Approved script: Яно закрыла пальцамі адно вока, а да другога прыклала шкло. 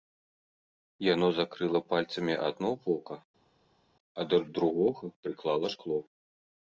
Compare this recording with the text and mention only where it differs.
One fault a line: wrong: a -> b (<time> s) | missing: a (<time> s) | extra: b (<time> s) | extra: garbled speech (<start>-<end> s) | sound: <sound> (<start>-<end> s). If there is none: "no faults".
no faults